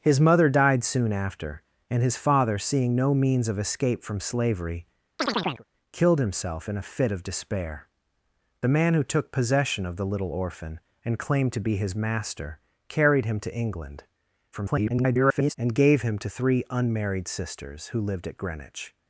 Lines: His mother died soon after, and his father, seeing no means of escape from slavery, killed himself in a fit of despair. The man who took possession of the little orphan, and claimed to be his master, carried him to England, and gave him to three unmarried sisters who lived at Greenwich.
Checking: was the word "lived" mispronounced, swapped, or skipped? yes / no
no